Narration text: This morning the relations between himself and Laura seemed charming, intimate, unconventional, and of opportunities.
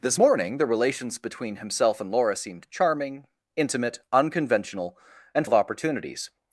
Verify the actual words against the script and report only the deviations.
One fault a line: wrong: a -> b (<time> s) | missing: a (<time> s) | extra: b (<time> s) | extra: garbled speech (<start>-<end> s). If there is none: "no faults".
no faults